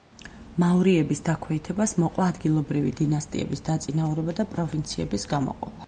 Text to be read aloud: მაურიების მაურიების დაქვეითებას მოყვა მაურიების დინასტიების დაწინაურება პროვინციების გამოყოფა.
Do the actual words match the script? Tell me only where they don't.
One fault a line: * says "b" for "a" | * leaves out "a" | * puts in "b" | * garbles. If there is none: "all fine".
* leaves out "მაურიების"
* says "ადგილობრივი" for "მაურიების"
* puts in "და"